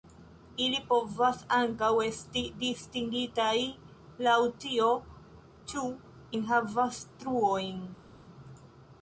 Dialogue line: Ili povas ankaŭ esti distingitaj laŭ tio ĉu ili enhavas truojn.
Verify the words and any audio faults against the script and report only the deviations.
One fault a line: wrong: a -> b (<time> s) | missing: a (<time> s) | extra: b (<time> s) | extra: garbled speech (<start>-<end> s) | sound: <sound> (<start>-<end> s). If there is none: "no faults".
missing: ili (5.8 s)